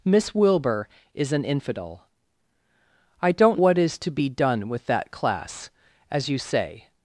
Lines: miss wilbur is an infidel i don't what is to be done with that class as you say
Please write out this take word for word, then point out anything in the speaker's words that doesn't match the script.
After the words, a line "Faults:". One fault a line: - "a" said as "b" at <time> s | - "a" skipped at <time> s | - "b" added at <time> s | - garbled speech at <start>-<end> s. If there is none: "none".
miss wilbur is an infidel i don't what is to be done with that class as you say
Faults:
none